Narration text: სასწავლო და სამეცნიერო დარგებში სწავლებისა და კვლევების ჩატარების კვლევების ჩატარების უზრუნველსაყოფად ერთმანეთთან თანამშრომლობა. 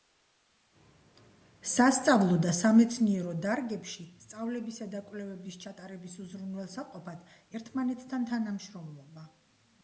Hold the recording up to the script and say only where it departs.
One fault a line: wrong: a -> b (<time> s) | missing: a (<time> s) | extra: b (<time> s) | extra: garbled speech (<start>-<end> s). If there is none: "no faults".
missing: კვლევების ჩატარების (6.2 s)